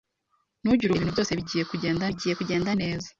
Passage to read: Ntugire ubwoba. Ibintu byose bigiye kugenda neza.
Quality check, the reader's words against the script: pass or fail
fail